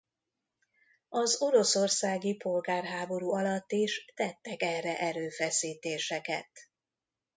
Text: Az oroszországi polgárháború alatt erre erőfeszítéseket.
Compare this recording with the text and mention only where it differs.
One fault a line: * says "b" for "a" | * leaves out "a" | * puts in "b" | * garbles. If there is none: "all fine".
* puts in "is tettek"